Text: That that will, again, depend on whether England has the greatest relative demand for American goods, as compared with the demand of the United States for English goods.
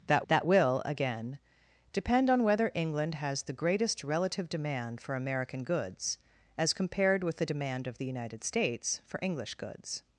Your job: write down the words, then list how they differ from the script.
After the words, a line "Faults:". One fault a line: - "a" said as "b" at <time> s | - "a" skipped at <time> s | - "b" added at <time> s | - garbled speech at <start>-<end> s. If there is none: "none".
That that will, again, depend on whether England has the greatest relative demand for American goods, as compared with the demand of the United States for English goods.
Faults:
none